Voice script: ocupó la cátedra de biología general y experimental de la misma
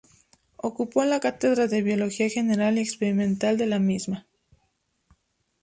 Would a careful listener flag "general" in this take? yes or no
no